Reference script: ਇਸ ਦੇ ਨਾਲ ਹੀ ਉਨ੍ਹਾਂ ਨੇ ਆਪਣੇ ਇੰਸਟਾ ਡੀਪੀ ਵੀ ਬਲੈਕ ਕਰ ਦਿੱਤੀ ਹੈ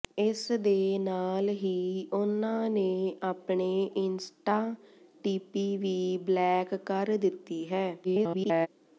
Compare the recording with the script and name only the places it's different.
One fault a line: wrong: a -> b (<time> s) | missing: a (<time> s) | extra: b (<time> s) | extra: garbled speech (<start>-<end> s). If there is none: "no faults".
extra: garbled speech (8.0-8.7 s)